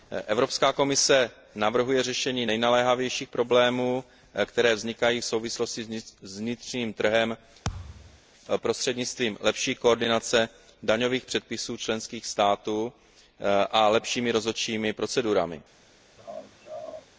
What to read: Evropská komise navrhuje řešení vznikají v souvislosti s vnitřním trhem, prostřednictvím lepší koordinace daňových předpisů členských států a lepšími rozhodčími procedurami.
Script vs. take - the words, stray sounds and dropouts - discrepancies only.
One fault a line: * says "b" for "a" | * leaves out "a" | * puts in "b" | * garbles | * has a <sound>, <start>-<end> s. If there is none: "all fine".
* puts in "nejnaléhavějších problémů které"
* has a thud, 7.6-8.2 s
* has a laugh, 16.2-17.1 s